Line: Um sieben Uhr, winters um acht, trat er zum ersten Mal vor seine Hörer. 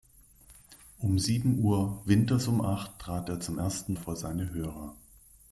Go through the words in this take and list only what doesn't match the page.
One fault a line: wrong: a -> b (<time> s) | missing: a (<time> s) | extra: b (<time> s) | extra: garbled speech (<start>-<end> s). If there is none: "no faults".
missing: Mal (3.9 s)